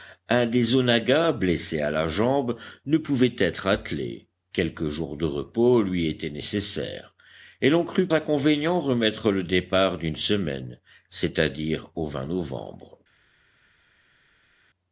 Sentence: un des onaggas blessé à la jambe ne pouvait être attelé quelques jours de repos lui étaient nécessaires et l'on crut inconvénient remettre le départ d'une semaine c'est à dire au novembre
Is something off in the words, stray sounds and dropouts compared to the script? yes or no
no